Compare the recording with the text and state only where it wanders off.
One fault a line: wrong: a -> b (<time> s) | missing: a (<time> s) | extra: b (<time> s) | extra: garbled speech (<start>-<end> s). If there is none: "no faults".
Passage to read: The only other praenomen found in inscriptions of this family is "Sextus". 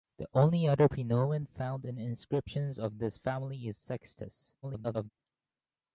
extra: garbled speech (4.6-5.1 s)